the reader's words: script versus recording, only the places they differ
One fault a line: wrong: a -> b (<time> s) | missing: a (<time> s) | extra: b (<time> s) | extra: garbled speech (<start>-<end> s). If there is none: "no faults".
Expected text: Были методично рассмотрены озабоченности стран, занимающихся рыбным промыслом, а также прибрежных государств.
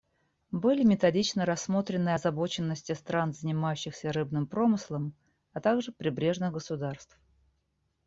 no faults